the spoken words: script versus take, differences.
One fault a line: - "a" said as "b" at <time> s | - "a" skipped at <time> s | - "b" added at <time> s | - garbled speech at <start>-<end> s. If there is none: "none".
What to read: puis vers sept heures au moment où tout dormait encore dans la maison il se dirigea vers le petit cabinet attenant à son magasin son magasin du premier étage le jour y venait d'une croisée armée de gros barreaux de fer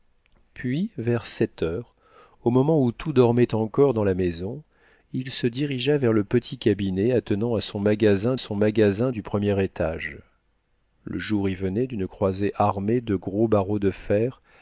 none